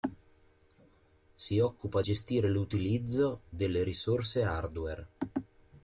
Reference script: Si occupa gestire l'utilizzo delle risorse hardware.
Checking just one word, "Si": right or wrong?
right